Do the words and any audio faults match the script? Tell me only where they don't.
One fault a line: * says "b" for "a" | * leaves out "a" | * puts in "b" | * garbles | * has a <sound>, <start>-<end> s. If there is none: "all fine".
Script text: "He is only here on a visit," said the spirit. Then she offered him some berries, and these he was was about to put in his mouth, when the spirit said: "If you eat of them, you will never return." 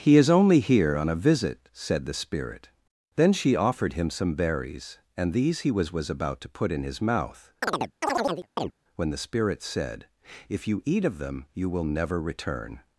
* has a chirp, 7.6-8.7 s